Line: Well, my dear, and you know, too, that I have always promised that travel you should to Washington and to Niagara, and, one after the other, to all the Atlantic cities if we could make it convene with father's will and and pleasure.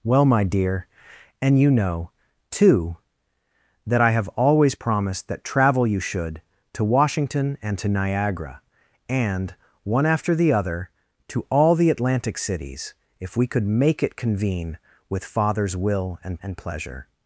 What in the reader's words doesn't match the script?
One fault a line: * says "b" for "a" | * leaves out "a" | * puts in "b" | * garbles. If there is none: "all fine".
all fine